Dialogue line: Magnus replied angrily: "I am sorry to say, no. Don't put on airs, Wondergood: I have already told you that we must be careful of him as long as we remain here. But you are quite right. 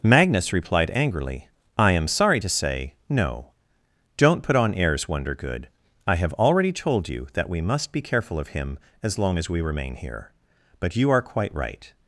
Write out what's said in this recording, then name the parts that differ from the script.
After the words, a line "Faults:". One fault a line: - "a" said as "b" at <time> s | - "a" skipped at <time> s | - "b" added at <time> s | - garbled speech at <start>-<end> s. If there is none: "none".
Magnus replied angrily: "I am sorry to say, no. Don't put on airs, Wondergood: I have already told you that we must be careful of him as long as we remain here. But you are quite right.
Faults:
none